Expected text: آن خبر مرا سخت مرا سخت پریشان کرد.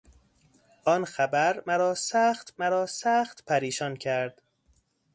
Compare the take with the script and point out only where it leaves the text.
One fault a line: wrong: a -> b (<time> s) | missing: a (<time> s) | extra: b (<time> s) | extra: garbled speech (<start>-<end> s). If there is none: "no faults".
no faults